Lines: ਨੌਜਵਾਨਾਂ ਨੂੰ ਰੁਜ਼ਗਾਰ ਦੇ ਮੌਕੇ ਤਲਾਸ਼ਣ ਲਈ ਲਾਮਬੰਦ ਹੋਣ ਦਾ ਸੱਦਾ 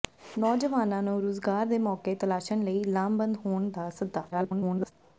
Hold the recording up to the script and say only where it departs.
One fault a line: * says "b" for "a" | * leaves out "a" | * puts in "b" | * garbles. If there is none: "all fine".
* garbles